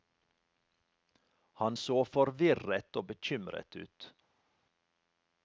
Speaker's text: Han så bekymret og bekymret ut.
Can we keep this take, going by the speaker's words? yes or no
no